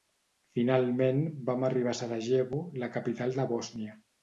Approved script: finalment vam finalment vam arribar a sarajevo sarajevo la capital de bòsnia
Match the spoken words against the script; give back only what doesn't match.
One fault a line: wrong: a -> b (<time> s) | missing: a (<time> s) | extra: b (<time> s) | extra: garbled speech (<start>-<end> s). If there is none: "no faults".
missing: finalment vam (1.7 s)
missing: sarajevo (2.6 s)